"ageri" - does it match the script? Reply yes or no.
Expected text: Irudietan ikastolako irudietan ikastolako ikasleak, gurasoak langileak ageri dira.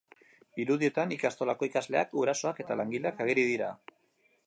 yes